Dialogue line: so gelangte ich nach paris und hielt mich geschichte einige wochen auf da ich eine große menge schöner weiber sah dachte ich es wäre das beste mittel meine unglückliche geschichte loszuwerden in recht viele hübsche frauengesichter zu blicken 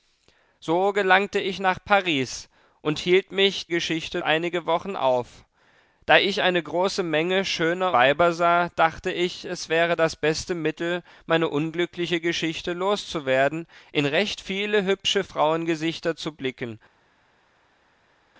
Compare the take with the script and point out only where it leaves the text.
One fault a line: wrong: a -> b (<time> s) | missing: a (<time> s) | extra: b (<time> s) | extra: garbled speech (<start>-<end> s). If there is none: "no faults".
no faults